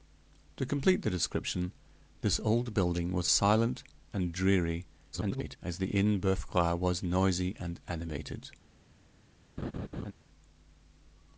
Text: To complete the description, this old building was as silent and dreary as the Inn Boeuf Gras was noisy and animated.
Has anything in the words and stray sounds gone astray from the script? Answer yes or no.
yes